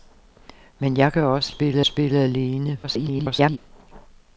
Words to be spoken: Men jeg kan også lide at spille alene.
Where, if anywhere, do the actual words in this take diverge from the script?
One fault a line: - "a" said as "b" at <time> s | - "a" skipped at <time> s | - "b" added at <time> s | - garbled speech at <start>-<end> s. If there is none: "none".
- "lide" said as "spille" at 1.5 s
- garbled speech at 2.8-3.6 s